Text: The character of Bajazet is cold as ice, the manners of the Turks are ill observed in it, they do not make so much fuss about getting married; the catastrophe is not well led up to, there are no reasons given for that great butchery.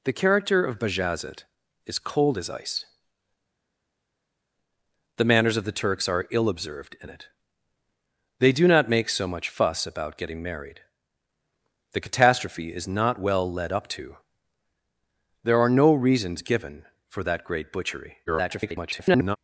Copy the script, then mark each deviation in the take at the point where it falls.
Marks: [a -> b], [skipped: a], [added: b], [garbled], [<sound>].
The character of Bajazet is cold as ice, the manners of the Turks are ill observed in it, they do not make so much fuss about getting married; the catastrophe is not well led up to, there are no reasons given for that great butchery. [garbled]